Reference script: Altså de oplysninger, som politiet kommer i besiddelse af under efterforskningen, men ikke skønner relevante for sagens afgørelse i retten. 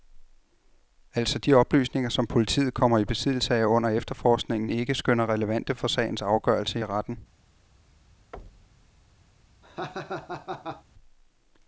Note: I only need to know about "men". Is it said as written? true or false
false